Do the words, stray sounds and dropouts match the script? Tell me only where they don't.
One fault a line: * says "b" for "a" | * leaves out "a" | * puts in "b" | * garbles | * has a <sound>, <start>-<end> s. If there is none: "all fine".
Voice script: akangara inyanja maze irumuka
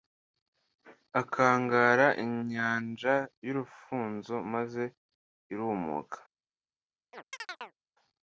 * puts in "y'urufunzo"
* has a chirp, 7.1-7.8 s